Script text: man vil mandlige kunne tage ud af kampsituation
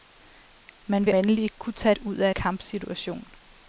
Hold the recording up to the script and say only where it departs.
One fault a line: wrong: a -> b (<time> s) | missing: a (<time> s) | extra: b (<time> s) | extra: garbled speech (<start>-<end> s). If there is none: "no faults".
no faults